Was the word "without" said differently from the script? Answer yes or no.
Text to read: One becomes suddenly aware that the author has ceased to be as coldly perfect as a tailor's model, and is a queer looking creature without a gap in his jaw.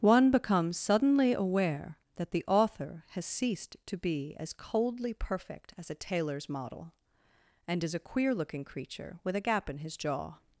yes